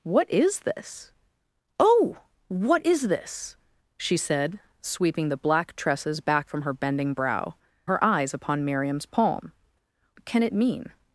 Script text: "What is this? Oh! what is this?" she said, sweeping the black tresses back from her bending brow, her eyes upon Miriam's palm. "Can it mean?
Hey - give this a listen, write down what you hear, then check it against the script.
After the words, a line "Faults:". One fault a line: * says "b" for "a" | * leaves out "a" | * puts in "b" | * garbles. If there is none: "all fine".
"What is this? Oh! what is this?" she said, sweeping the black tresses back from her bending brow, her eyes upon Miriam's palm. "Can it mean?
Faults:
all fine